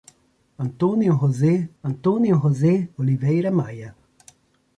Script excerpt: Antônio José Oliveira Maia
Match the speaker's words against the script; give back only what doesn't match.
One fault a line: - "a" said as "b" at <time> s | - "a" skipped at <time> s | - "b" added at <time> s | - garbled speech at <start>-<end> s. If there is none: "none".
- "antônio José" added at 1.8 s